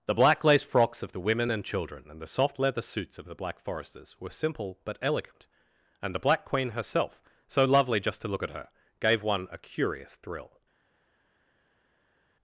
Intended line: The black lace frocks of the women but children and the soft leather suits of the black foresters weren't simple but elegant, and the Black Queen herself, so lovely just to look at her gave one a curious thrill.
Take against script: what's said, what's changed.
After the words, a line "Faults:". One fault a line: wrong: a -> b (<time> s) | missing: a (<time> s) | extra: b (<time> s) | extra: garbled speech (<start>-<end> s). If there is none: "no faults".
The black lace frocks of the women and children and the soft leather suits of the black foresters were simple but elegant, and the Black Queen herself, so lovely just to look at her gave one a curious thrill.
Faults:
wrong: but -> and (1.5 s)
wrong: weren't -> were (4.2 s)